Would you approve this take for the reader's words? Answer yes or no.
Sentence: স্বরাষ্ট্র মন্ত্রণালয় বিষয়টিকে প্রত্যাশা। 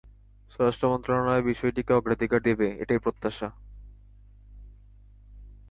no